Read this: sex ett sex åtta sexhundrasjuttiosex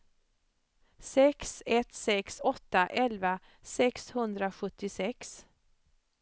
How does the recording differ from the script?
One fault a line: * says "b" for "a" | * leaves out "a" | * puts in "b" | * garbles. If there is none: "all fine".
* puts in "elva"